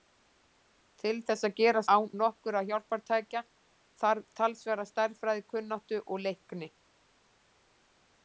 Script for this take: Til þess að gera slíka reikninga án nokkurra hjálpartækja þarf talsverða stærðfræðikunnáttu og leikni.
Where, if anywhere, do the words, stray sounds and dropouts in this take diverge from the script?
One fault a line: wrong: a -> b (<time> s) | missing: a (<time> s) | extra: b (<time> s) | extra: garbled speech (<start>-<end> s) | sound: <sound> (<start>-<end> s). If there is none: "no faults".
missing: slíka reikninga (1.8 s)